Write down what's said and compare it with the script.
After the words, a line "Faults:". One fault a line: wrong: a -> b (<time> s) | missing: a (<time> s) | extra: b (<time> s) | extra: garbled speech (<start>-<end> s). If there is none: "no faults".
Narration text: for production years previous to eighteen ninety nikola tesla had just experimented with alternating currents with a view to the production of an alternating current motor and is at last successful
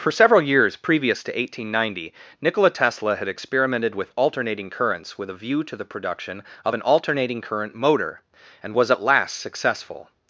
for several years previous to eighteen ninety nikola tesla had experimented with alternating currents with a view to the production of an alternating current motor and was at last successful
Faults:
wrong: production -> several (0.1 s)
missing: just (3.3 s)
wrong: is -> was (8.7 s)